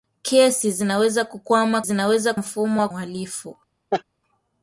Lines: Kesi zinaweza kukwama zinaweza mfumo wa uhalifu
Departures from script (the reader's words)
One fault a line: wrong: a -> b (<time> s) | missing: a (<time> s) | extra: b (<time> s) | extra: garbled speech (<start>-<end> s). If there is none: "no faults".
no faults